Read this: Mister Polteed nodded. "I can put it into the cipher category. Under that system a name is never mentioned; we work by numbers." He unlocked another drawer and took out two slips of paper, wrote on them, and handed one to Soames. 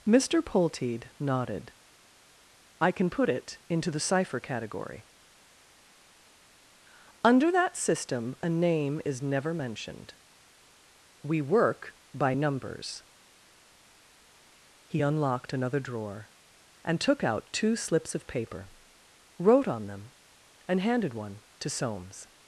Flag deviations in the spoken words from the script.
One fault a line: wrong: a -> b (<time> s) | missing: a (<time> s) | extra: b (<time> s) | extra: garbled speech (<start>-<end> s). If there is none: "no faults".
no faults